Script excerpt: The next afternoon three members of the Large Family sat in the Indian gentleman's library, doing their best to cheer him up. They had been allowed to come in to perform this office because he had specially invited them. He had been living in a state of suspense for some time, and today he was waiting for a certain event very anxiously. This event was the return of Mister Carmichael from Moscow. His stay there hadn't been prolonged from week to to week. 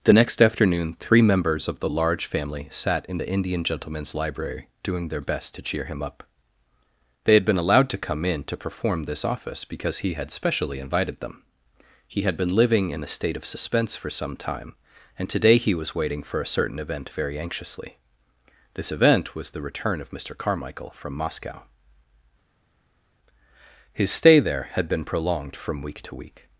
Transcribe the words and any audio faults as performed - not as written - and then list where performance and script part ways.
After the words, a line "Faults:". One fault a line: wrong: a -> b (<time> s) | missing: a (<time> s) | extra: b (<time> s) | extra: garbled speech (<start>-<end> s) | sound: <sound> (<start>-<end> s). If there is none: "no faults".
The next afternoon three members of the Large Family sat in the Indian gentleman's library, doing their best to cheer him up. They had been allowed to come in to perform this office because he had specially invited them. He had been living in a state of suspense for some time, and today he was waiting for a certain event very anxiously. This event was the return of Mister Carmichael from Moscow. His stay there had been prolonged from week to week.
Faults:
wrong: hadn't -> had (24.7 s)
missing: to (26.1 s)